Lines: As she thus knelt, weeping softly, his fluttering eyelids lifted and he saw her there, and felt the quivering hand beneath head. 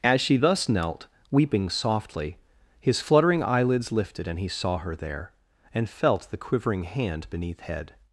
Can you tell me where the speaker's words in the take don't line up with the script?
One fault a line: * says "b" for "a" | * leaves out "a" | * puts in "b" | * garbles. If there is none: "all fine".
all fine